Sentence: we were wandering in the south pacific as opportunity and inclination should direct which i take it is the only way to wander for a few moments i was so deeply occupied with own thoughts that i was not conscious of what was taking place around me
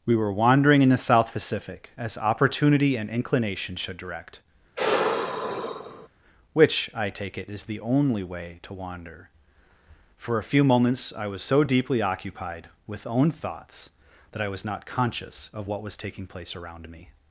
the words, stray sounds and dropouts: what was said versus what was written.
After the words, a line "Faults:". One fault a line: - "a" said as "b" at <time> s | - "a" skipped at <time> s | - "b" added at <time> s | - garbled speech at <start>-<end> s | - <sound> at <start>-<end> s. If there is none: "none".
we were wandering in the south pacific as opportunity and inclination should direct which i take it is the only way to wander for a few moments i was so deeply occupied with own thoughts that i was not conscious of what was taking place around me
Faults:
- sigh at 4.8-6.1 s